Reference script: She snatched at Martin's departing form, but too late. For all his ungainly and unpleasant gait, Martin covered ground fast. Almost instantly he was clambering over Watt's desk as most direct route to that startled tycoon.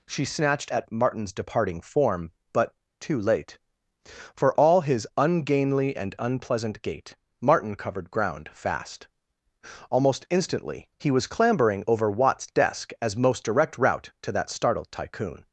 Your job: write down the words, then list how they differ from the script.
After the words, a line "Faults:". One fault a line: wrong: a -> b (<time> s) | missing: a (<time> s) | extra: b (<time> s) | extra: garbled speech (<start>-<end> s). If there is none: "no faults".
She snatched at Martin's departing form, but too late. For all his ungainly and unpleasant gait, Martin covered ground fast. Almost instantly he was clambering over Watt's desk as most direct route to that startled tycoon.
Faults:
no faults